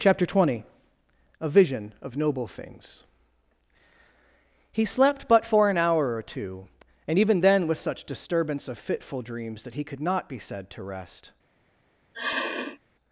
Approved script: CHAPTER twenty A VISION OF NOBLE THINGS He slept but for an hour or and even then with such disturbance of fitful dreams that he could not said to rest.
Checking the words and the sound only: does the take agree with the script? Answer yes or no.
no